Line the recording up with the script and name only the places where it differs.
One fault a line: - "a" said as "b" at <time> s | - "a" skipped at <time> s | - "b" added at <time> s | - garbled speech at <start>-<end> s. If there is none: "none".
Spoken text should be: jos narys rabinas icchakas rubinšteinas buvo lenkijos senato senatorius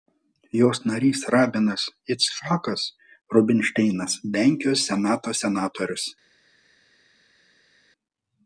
- "buvo" skipped at 4.2 s